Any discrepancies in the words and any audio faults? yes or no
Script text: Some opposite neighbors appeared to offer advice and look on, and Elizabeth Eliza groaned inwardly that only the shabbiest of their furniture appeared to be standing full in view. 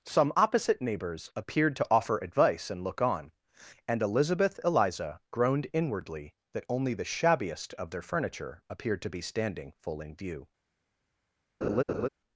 yes